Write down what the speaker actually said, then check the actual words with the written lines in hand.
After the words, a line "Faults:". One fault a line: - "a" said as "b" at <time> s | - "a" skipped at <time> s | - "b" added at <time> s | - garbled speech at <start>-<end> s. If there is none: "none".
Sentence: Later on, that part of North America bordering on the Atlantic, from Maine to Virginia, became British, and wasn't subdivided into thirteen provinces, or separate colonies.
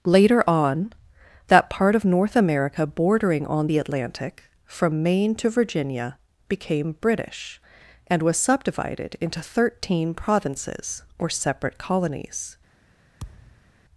Later on, that part of North America bordering on the Atlantic, from Maine to Virginia, became British, and was subdivided into thirteen provinces, or separate colonies.
Faults:
- "wasn't" said as "was" at 8.2 s